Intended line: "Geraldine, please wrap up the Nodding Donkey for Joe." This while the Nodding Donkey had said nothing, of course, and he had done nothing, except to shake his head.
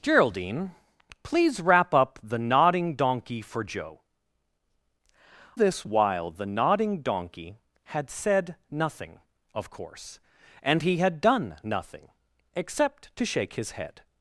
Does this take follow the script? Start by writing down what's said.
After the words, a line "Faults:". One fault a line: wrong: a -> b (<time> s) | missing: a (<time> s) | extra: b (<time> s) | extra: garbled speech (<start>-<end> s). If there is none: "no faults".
"Geraldine, please wrap up the Nodding Donkey for Joe." This while the Nodding Donkey had said nothing, of course, and he had done nothing, except to shake his head.
Faults:
no faults